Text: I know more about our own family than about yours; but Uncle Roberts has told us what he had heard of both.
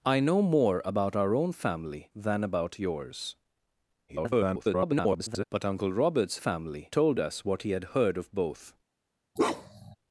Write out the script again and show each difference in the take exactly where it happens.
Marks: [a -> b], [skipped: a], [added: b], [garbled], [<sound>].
I know more about our own family than about yours; [garbled] but Uncle Roberts [has -> family] told us what he had heard of both. [bark]